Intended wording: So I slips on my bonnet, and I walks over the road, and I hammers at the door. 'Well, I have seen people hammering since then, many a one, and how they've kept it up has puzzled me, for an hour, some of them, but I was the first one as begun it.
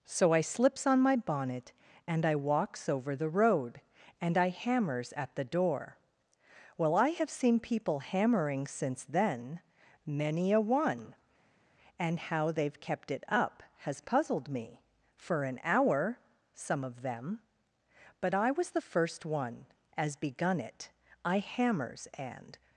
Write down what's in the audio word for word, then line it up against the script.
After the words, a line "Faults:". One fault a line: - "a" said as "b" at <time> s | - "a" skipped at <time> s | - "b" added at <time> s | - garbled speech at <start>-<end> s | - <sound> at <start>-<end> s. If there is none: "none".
So I slips on my bonnet, and I walks over the road, and I hammers at the door. 'Well, I have seen people hammering since then, many a one, and how they've kept it up has puzzled me, for an hour, some of them, but I was the first one as begun it. I hammers, and
Faults:
- "I hammers and" added at 21.2 s